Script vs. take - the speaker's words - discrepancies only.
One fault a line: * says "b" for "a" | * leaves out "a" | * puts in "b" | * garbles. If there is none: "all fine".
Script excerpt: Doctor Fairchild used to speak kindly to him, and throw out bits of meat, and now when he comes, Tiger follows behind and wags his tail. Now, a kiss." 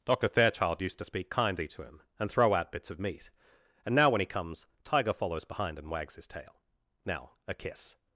all fine